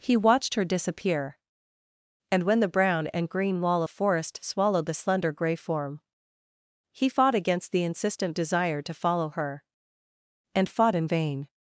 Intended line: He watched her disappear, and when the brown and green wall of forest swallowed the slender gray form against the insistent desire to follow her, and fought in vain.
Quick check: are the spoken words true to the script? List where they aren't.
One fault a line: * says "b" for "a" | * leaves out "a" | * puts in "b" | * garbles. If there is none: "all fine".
* puts in "he fought"